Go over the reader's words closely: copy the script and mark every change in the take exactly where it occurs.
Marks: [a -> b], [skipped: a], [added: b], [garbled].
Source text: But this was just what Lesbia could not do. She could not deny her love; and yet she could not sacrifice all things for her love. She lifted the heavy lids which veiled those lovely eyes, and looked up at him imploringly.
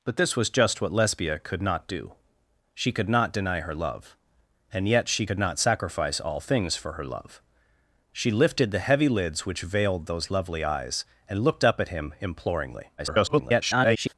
But this was just what Lesbia could not do. She could not deny her love; and yet she could not sacrifice all things for her love. She lifted the heavy lids which veiled those lovely eyes, and looked up at him imploringly. [garbled]